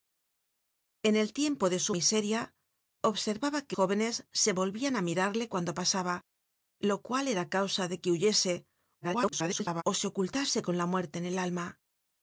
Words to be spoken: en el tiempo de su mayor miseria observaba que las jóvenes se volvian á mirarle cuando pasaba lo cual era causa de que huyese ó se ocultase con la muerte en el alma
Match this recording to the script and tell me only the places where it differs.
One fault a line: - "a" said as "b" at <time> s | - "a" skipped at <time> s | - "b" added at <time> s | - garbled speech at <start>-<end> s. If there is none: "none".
- "mayor" skipped at 1.9 s
- "las" skipped at 3.7 s
- garbled speech at 9.0-9.8 s